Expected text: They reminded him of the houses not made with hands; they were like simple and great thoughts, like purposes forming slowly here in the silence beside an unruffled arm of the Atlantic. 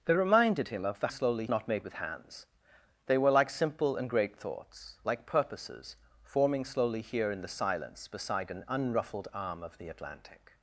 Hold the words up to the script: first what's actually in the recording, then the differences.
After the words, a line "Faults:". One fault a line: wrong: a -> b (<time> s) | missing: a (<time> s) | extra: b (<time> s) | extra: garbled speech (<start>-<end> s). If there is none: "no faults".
They reminded him of the slowly not made with hands; they were like simple and great thoughts, like purposes forming slowly here in the silence beside an unruffled arm of the Atlantic.
Faults:
wrong: houses -> slowly (1.1 s)